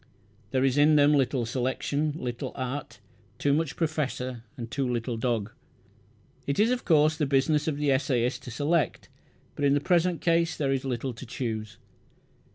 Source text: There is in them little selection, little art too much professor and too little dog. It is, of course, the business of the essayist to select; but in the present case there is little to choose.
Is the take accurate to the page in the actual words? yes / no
yes